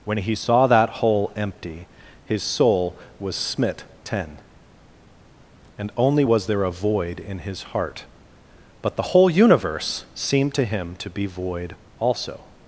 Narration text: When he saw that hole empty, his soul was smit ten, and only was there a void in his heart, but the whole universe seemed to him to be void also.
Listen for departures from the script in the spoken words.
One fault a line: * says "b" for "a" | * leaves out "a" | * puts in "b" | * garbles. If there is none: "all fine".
all fine